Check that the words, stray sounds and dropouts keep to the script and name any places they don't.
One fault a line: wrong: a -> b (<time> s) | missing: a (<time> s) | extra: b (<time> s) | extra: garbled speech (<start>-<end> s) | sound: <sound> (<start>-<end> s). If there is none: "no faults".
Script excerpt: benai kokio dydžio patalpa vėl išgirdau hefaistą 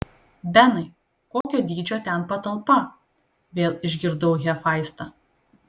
sound: dropout (1.4-1.4 s)
extra: ten (2.1 s)